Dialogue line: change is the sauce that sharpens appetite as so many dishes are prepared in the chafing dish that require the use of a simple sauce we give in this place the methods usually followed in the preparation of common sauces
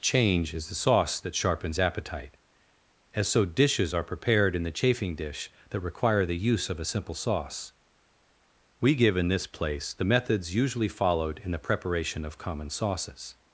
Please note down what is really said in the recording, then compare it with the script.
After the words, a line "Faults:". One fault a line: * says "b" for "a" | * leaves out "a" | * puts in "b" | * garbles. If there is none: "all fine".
change is the sauce that sharpens appetite as so dishes are prepared in the chafing dish that require the use of a simple sauce we give in this place the methods usually followed in the preparation of common sauces
Faults:
* leaves out "many"